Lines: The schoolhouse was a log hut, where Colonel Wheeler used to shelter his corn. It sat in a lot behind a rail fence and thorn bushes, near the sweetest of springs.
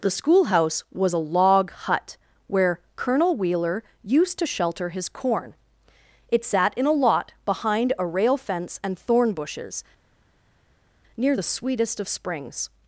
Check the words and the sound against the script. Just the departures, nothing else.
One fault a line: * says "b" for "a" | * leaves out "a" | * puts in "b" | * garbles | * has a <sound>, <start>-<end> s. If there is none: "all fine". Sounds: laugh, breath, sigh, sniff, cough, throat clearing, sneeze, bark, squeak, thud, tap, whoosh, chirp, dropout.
all fine